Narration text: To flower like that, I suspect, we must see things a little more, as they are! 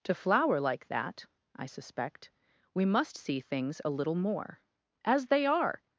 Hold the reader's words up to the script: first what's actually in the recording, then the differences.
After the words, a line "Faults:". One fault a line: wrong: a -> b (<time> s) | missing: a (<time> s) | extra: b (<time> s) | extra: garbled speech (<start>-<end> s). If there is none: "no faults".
To flower like that, I suspect, we must see things a little more, as they are!
Faults:
no faults